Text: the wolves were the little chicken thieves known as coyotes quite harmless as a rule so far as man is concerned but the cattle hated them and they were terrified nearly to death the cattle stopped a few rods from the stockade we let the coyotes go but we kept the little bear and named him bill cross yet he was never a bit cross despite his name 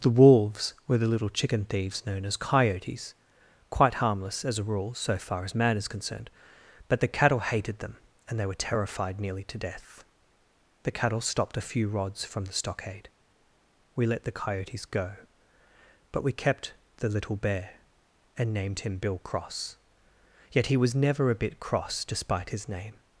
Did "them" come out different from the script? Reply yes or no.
no